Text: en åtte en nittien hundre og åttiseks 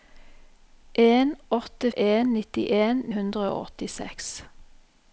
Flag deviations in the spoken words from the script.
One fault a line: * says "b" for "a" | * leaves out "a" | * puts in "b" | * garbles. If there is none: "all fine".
all fine